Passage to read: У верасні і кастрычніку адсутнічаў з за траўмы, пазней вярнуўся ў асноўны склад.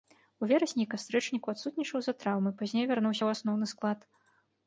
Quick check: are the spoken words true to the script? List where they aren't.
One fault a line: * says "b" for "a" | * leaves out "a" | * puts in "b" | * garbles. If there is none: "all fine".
all fine